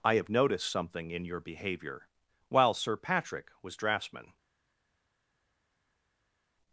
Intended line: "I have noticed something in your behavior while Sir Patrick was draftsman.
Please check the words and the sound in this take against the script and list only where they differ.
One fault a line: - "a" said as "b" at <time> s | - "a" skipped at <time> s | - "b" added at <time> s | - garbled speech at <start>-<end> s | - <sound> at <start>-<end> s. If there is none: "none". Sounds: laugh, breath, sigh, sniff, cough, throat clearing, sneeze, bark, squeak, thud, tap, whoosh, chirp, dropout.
none